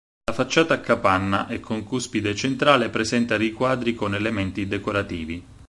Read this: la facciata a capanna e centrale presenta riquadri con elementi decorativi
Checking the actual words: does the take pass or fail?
fail